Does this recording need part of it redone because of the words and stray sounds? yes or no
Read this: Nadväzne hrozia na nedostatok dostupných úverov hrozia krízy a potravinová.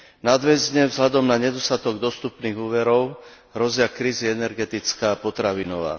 yes